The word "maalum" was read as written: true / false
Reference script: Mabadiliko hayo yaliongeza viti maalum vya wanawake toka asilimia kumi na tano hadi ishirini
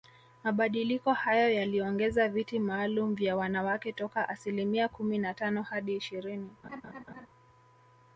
true